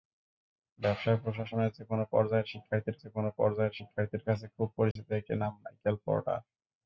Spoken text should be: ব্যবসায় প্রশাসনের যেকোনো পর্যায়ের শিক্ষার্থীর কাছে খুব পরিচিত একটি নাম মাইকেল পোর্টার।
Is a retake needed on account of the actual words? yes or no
yes